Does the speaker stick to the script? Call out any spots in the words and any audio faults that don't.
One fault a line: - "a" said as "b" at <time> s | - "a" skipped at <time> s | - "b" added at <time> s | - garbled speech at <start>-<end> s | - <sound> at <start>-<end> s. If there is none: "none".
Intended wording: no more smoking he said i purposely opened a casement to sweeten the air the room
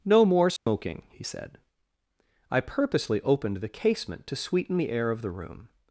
- dropout at 0.6-0.7 s
- "a" said as "the" at 3.6 s
- "of" added at 5.1 s